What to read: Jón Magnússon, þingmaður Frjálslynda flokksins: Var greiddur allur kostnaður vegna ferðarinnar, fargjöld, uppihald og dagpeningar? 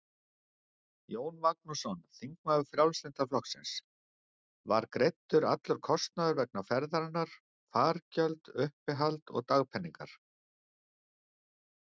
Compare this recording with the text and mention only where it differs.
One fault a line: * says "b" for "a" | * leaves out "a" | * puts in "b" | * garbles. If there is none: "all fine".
all fine